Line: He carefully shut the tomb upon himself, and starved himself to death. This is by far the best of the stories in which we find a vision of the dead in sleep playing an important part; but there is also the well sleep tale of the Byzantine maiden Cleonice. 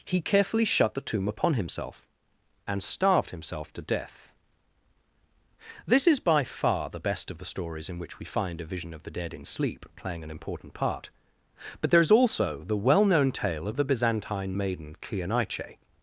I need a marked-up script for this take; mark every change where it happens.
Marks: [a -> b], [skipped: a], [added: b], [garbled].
He carefully shut the tomb upon himself, and starved himself to death. This is by far the best of the stories in which we find a vision of the dead in sleep playing an important part; but there is also the well [sleep -> known] tale of the Byzantine maiden Cleonice.